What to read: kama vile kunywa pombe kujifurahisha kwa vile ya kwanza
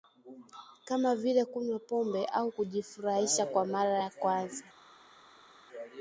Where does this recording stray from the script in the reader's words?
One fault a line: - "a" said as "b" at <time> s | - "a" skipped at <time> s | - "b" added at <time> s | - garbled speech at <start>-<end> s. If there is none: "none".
- "au" added at 2.2 s
- "vile" said as "mara" at 3.6 s